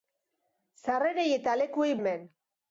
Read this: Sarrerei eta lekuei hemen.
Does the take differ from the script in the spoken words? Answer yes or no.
no